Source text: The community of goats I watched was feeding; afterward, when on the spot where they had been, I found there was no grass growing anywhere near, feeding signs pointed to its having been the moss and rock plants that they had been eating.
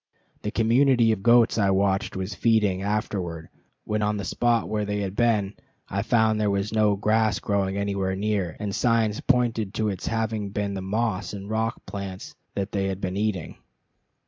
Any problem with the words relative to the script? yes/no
yes